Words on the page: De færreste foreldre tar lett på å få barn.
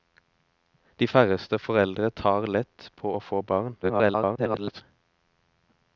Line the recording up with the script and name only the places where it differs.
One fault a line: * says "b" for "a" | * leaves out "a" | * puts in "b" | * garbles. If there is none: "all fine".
* garbles